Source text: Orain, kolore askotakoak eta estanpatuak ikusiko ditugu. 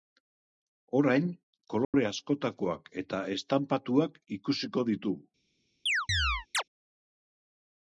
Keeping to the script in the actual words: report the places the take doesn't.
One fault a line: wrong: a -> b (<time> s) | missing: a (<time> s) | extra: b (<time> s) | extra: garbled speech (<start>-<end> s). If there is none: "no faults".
no faults